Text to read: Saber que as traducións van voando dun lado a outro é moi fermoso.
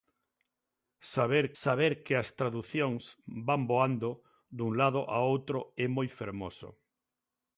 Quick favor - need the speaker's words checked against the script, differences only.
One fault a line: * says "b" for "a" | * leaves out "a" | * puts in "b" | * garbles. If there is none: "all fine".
* puts in "saber"